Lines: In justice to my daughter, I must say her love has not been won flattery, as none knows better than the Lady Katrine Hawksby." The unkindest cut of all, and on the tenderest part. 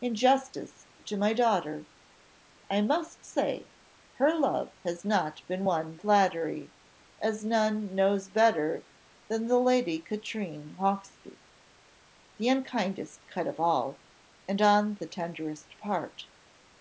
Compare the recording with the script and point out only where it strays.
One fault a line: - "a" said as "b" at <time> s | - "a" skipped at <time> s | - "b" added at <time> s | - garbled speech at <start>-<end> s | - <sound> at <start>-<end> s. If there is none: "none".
none